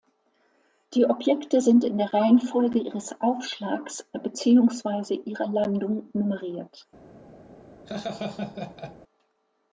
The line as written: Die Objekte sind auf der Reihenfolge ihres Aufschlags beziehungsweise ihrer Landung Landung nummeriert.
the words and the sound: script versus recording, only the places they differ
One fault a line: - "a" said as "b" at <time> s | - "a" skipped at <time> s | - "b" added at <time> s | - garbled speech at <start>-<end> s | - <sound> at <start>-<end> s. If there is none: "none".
- "auf" said as "in" at 1.8 s
- "Landung" skipped at 6.1 s
- laugh at 7.9-9.0 s